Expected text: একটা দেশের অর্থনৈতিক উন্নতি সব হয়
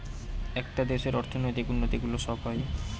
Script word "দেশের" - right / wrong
right